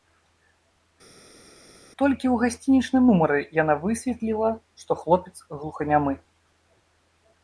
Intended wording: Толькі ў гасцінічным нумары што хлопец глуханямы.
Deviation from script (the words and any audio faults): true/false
true